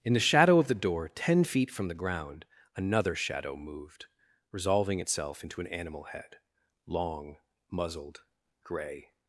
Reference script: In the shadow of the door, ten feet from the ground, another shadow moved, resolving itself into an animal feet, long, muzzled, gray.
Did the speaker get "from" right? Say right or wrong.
right